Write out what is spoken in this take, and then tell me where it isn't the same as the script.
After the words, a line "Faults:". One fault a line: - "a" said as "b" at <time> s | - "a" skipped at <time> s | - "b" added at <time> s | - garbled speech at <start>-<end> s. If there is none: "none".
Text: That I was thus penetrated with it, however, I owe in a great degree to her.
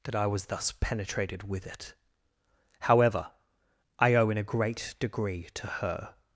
That I was thus penetrated with it, however, I owe in a great degree to her.
Faults:
none